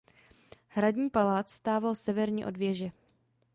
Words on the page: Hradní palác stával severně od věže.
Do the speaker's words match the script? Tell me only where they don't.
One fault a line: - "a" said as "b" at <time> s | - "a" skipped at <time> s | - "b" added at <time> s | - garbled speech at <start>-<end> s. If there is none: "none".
none